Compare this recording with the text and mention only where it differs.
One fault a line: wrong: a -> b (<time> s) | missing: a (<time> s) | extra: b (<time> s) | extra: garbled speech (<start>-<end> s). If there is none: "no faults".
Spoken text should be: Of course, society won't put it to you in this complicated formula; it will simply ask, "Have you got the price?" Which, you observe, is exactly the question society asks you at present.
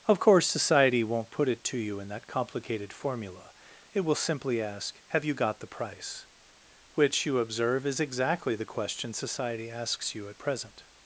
wrong: this -> that (2.1 s)